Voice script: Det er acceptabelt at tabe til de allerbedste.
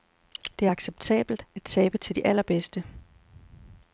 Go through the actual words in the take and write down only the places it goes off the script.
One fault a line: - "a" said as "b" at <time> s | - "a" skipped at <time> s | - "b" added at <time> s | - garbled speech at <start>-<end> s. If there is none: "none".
none